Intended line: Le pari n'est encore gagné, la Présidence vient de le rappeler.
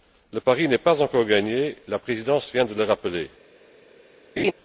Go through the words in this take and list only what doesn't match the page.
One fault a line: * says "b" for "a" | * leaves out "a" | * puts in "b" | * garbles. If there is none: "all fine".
* puts in "pas"